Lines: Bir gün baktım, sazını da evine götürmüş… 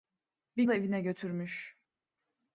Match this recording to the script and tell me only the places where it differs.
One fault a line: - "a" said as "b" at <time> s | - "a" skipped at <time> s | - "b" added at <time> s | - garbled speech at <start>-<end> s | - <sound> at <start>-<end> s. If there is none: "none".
- "gün baktım sazını" skipped at 0.6 s